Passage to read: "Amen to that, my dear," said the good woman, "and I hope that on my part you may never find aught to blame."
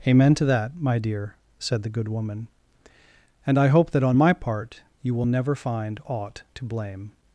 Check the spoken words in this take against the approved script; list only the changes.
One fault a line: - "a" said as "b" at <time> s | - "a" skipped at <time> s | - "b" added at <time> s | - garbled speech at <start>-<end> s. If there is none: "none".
- "may" said as "will" at 5.1 s